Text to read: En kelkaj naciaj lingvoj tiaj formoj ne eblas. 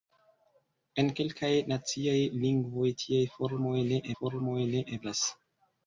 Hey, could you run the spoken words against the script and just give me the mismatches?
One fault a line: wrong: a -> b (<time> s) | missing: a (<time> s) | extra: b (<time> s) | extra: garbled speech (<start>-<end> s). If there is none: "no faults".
extra: formoj ne (4.2 s)